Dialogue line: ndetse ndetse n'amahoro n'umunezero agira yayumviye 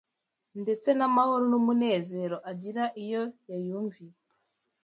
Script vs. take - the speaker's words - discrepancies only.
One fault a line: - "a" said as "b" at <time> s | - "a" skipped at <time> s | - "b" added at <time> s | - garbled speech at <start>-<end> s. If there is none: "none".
- "ndetse" skipped at 0.9 s
- "iyo" added at 3.0 s